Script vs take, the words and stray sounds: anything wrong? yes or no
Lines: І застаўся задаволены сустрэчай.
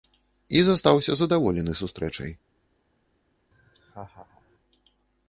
yes